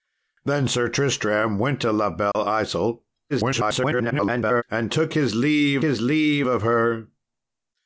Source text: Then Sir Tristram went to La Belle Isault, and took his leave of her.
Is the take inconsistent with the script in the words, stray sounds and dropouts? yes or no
yes